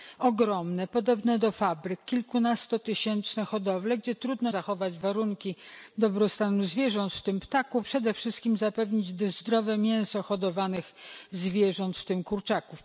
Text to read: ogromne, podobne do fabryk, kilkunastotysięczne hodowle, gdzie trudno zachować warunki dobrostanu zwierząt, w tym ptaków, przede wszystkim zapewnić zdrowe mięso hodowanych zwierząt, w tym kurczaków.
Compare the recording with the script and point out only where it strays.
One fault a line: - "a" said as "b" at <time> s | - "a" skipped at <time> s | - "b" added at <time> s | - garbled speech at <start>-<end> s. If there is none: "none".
none